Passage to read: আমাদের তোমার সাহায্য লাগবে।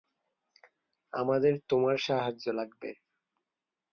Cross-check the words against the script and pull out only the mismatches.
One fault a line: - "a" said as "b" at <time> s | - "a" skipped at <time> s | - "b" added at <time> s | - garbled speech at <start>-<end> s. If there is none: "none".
none